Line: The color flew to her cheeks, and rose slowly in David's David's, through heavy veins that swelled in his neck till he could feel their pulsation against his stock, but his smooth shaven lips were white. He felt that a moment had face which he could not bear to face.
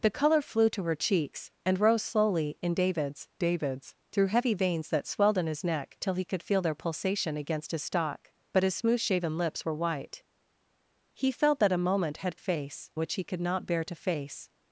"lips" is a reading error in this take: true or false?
false